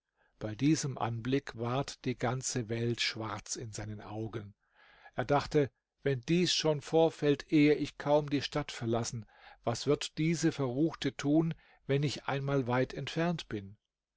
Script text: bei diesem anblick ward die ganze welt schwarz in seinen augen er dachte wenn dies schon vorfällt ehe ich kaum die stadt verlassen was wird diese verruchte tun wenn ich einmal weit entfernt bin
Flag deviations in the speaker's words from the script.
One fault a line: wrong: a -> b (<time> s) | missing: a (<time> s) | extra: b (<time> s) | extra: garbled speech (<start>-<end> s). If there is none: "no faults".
no faults